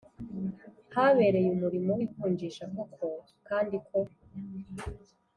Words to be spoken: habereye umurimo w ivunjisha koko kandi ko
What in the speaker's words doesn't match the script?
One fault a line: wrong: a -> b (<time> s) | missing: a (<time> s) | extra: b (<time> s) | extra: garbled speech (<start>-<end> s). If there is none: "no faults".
no faults